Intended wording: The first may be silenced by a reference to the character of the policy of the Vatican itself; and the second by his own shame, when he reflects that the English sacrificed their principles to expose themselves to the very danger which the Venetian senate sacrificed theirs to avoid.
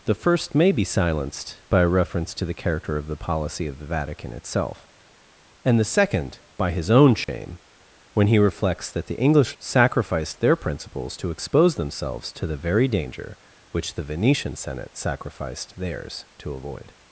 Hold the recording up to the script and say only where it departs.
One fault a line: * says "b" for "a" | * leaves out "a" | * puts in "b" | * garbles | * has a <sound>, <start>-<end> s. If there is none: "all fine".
* has a dropout, 7.2-7.3 s